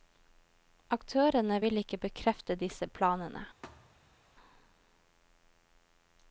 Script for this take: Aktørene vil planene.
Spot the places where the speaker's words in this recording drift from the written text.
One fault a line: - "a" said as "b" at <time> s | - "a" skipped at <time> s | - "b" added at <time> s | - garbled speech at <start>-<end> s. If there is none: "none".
- "ikke bekrefte disse" added at 1.8 s